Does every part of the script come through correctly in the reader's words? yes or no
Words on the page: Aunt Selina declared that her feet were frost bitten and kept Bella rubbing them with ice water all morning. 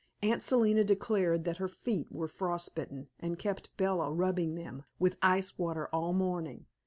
yes